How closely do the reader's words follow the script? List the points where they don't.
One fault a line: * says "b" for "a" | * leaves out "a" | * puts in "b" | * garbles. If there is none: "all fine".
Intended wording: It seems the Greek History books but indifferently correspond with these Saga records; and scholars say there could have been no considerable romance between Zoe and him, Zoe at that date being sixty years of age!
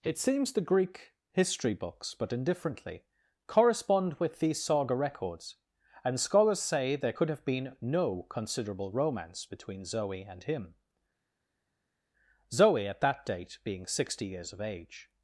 all fine